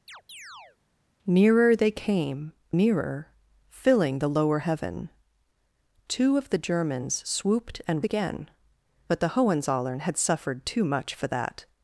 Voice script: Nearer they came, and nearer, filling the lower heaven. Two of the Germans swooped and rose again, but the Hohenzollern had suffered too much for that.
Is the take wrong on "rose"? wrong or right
wrong